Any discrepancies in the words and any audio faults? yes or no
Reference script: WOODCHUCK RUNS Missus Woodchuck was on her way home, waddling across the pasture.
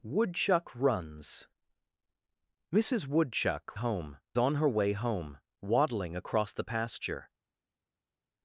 yes